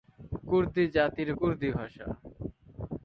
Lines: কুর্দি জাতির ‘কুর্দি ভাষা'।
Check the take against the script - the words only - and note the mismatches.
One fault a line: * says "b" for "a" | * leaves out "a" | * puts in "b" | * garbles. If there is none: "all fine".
all fine